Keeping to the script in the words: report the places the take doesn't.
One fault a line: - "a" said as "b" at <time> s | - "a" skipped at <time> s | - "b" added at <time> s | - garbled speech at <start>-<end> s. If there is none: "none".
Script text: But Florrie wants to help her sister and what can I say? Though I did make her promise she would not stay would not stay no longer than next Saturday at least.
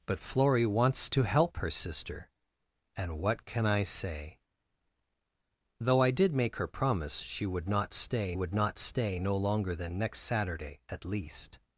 none